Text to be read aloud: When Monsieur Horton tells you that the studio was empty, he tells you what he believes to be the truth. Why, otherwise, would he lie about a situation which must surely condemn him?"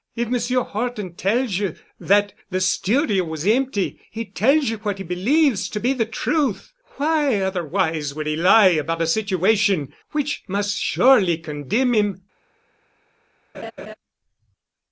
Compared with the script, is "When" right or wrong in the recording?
wrong